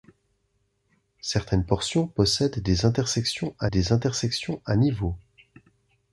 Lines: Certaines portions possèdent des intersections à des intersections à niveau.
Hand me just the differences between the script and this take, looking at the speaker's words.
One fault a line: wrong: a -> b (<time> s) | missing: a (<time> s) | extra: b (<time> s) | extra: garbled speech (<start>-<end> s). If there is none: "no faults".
no faults